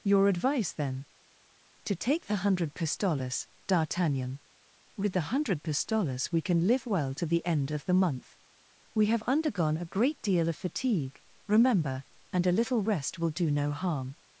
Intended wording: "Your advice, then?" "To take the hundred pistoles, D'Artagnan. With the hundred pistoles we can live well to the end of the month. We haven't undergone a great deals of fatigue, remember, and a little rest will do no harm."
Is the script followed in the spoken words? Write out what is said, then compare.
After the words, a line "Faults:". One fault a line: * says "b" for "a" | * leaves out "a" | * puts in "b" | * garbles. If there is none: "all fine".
"Your advice, then?" "To take the hundred pistoles, D'Artagnan. With the hundred pistoles we can live well to the end of the month. We have undergone a great deal of fatigue, remember, and a little rest will do no harm."
Faults:
* says "have" for "haven't"
* says "deal" for "deals"